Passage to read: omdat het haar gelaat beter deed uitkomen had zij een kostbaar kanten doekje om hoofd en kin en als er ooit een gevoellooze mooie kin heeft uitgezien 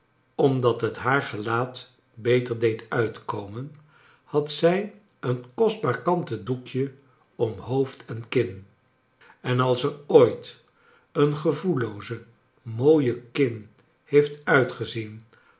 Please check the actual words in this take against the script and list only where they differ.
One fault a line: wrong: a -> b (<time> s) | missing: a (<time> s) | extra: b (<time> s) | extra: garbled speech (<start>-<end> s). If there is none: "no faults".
no faults